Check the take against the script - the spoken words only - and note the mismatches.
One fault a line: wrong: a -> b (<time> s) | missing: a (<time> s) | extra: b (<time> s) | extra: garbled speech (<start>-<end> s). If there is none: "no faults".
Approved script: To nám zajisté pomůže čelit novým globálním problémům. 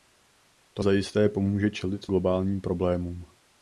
missing: nám (0.8 s)
missing: novým (2.1 s)